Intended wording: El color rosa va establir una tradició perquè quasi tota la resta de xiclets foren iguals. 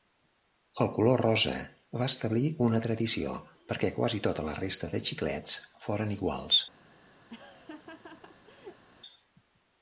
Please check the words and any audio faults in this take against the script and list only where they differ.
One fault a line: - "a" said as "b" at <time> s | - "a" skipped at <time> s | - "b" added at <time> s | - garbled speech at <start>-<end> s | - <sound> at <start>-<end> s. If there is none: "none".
- laugh at 7.3-8.8 s